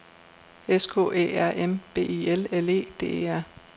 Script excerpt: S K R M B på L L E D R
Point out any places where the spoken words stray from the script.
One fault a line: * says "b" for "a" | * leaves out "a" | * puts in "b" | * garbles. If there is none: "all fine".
* puts in "Æ"
* says "I" for "på"
* puts in "E"